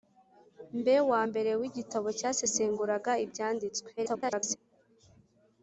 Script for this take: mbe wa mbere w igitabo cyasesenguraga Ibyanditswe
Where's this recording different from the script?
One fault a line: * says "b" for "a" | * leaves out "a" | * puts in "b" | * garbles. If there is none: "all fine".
* garbles